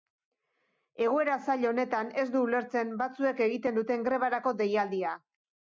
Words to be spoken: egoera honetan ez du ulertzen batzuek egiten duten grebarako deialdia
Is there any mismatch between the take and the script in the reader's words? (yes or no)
yes